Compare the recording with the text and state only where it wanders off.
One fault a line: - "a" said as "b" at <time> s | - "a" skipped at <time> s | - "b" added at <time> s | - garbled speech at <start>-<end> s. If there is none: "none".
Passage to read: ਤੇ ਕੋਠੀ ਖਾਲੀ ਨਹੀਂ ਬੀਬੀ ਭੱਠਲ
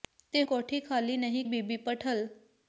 none